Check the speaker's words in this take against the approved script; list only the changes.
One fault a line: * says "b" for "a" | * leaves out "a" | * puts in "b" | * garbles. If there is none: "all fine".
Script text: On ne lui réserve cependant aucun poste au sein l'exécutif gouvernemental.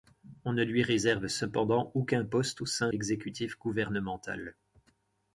all fine